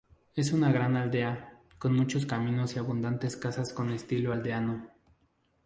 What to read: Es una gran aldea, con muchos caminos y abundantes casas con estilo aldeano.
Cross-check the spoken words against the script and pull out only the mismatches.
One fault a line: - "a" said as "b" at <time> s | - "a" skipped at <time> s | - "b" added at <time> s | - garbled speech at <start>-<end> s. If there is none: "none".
none